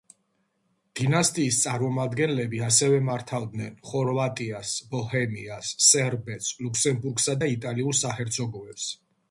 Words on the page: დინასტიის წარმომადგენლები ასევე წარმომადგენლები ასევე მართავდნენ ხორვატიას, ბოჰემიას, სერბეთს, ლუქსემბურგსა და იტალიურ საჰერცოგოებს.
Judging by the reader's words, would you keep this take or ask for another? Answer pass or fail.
fail